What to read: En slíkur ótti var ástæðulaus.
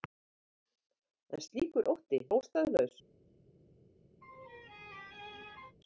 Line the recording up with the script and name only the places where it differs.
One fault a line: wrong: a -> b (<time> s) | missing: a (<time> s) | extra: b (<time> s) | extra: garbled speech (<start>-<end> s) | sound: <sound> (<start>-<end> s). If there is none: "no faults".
missing: var (2.2 s)
sound: laugh (4.2-5.8 s)